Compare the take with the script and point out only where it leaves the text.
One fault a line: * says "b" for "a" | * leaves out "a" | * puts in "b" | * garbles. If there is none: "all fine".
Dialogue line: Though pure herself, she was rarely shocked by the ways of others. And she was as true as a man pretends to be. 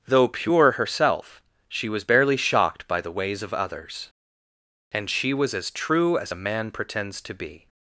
* says "barely" for "rarely"